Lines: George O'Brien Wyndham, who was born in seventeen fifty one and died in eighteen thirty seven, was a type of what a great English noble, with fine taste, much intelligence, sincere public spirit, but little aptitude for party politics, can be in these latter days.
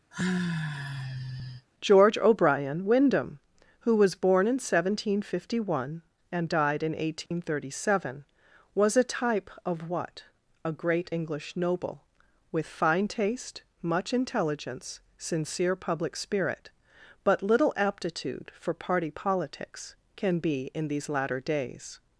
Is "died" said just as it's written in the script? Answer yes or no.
yes